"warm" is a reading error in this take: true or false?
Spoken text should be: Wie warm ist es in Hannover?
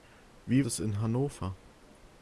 true